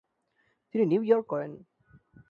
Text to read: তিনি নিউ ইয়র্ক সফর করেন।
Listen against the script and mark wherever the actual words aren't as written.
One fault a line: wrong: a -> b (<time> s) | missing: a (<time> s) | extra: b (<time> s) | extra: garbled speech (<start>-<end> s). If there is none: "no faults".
missing: সফর (1.3 s)